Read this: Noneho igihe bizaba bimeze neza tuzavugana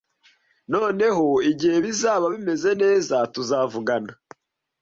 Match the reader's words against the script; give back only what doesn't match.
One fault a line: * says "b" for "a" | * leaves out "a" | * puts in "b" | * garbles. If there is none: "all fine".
all fine